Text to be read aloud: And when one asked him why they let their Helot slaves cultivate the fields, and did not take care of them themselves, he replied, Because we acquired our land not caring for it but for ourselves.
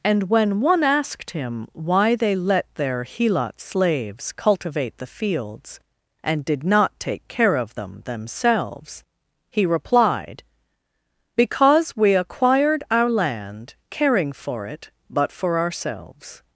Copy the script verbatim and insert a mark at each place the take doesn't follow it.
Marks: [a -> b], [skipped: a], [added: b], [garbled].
And when one asked him why they let their Helot slaves cultivate the fields, and did not take care of them themselves, he replied, Because we acquired our land [skipped: not] caring for it but for ourselves.